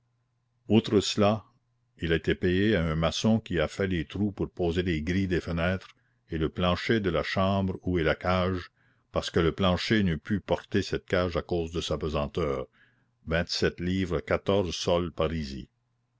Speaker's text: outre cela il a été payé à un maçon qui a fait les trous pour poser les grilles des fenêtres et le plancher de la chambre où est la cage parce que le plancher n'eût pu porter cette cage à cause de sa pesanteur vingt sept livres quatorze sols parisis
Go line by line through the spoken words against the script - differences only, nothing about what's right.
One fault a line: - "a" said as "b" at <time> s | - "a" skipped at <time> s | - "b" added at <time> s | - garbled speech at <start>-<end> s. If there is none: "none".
none